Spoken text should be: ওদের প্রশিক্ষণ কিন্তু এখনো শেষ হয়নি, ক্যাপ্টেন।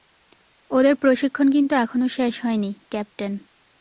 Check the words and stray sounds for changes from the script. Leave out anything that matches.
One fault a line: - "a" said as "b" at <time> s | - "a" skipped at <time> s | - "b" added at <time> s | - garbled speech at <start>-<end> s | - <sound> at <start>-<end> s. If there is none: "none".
none